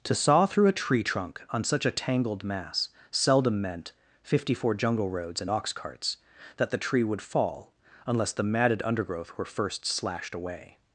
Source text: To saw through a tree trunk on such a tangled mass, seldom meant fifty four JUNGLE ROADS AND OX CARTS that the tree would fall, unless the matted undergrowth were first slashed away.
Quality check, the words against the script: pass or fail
pass